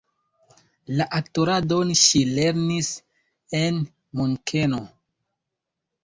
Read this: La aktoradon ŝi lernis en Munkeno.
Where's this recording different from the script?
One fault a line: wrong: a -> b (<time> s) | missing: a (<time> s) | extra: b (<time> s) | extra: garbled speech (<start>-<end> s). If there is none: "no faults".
no faults